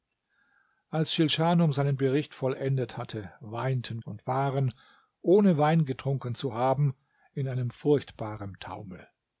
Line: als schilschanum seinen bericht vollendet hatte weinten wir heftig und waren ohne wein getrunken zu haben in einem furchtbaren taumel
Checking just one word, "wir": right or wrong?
wrong